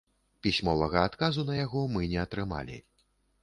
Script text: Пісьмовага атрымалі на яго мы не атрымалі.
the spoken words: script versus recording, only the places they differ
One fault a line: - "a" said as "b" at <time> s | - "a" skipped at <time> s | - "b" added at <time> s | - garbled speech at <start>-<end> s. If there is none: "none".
- "атрымалі" said as "адказу" at 1.1 s